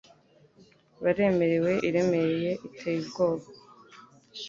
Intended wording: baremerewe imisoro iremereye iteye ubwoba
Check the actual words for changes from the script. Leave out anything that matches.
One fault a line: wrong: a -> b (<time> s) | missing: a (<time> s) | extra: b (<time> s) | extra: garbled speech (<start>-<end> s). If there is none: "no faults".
missing: imisoro (1.7 s)